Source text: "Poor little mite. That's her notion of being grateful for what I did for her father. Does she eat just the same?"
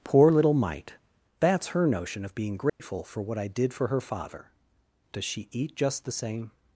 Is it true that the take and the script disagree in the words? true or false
false